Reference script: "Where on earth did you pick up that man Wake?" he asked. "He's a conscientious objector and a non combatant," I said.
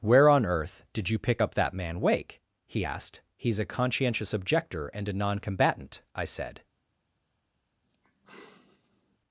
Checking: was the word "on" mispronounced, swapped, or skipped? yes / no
no